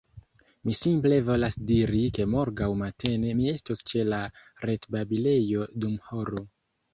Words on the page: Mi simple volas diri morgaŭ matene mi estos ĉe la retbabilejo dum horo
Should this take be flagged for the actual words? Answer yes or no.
yes